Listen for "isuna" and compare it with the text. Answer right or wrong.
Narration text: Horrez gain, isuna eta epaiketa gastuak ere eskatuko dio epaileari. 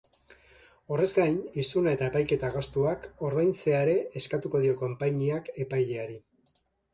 right